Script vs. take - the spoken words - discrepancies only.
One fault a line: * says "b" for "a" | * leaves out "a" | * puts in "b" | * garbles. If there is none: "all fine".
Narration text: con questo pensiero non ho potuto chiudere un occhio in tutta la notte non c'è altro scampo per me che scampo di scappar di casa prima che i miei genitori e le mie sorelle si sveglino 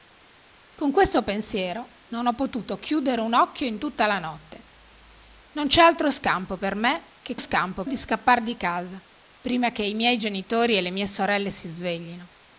all fine